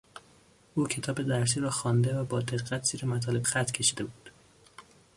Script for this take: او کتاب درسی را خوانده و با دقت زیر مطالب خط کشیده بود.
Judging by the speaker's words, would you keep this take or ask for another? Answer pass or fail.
pass